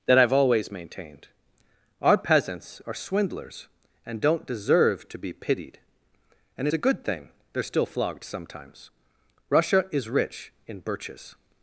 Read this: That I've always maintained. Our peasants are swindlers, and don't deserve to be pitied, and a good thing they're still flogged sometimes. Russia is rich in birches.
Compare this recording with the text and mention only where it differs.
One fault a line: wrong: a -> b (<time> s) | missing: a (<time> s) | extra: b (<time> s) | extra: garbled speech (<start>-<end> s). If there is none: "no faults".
no faults